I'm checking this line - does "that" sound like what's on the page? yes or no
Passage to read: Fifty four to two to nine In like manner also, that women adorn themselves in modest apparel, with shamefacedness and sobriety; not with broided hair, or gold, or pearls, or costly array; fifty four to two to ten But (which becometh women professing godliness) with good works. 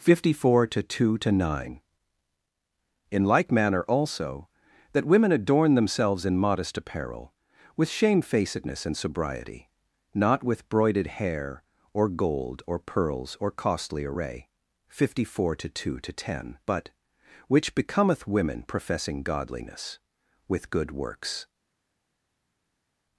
yes